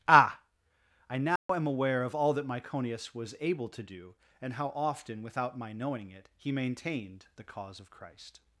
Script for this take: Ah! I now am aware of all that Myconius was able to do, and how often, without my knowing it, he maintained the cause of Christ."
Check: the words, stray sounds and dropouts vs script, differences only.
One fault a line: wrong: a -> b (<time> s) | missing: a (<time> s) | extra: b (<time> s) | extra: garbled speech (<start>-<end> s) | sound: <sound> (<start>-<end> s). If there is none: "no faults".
sound: dropout (1.4-1.5 s)